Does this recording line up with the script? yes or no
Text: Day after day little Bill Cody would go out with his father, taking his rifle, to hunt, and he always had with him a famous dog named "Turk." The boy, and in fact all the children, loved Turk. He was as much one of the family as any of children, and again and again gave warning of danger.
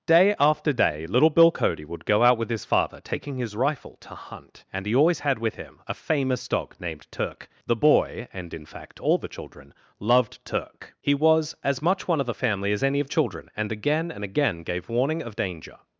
yes